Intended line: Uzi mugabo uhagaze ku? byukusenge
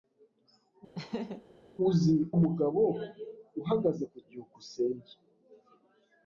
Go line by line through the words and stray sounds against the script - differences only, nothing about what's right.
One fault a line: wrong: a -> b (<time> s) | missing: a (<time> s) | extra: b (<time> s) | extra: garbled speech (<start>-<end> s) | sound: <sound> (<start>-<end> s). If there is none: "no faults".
sound: laugh (0.9-1.4 s)